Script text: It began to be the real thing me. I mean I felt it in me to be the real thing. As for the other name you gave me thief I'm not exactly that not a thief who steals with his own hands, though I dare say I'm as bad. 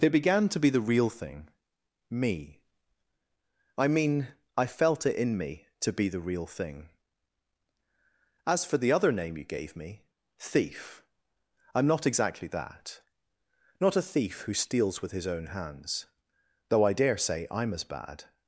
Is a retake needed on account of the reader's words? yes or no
no